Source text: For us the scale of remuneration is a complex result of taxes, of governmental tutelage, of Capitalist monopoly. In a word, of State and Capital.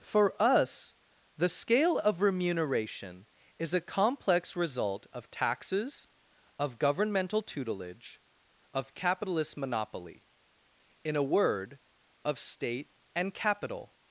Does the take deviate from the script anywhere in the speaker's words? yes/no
no